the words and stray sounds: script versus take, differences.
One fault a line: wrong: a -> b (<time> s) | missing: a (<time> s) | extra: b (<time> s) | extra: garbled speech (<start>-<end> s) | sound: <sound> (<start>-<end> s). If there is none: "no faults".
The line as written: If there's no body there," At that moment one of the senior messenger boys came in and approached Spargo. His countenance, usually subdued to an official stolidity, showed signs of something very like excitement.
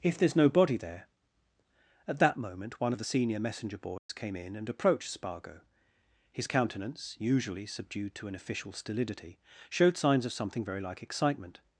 sound: dropout (4.0-4.1 s)